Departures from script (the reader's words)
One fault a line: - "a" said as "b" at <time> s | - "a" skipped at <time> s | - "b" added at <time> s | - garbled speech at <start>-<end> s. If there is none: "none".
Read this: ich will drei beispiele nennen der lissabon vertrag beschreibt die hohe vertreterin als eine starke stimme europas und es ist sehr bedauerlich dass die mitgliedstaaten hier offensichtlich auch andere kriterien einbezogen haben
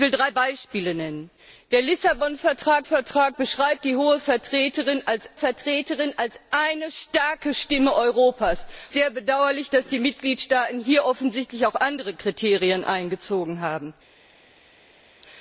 - "vertrag" added at 2.8 s
- "vertreterin als" added at 5.3 s
- "und es ist" skipped at 8.7 s